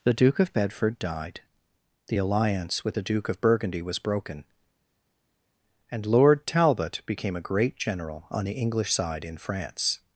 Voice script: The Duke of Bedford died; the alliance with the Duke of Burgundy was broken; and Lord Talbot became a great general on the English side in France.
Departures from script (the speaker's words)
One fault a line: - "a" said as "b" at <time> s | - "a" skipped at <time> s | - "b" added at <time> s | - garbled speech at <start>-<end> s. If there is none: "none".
none